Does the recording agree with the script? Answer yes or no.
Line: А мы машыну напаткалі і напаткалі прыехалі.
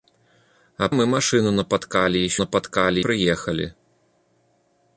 yes